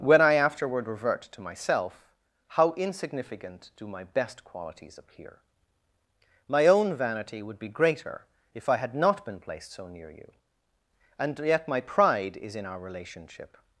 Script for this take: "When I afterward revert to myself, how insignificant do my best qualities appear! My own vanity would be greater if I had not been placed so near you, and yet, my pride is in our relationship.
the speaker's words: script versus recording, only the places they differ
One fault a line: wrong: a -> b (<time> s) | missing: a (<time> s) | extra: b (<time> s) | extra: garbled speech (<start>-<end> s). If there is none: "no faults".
no faults